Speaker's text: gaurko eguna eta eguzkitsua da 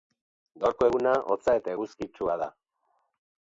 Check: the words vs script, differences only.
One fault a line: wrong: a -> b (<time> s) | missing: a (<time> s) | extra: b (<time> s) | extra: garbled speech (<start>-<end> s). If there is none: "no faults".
extra: hotza (1.3 s)